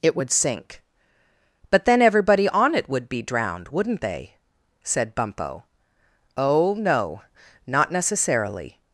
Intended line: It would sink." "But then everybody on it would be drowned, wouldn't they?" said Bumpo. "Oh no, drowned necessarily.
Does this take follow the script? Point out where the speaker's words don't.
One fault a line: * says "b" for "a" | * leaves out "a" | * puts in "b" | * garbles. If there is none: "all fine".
* says "not" for "drowned"